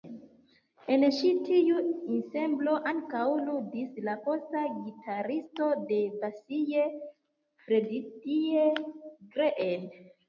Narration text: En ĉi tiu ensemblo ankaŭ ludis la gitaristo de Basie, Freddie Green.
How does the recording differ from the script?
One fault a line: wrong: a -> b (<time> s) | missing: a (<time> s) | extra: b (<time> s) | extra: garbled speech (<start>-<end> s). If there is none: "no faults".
extra: posta (4.2 s)